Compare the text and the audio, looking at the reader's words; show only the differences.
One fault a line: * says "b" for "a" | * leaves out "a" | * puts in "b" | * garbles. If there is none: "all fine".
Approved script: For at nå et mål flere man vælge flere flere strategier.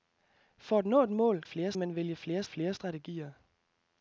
all fine